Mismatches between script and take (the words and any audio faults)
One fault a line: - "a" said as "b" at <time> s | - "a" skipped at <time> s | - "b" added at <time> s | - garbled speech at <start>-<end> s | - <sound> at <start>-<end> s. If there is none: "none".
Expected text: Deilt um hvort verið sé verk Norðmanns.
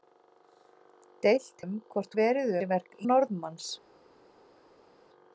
none